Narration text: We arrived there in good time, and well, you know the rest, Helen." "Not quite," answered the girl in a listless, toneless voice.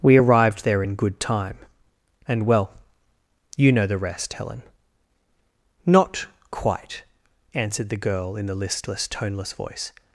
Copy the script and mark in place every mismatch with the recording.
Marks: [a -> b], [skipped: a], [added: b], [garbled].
We arrived there in good time, and well, you know the rest, Helen." "Not quite," answered the girl in [a -> the] listless, toneless voice.